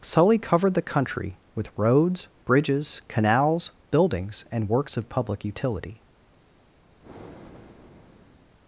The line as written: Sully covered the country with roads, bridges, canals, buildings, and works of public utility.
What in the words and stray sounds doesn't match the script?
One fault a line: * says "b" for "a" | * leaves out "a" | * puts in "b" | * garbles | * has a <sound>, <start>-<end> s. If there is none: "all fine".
* has a breath, 7.0-8.5 s